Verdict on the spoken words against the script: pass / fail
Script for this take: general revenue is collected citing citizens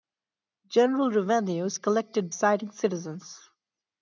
pass